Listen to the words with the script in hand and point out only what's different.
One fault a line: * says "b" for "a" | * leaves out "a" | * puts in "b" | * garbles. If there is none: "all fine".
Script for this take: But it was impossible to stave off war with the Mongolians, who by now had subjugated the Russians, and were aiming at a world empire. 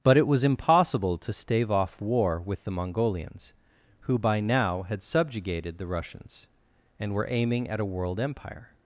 all fine